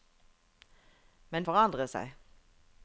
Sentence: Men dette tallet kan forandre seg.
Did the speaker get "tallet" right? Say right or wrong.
wrong